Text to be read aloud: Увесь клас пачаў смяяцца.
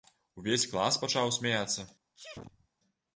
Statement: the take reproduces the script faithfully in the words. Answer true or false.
true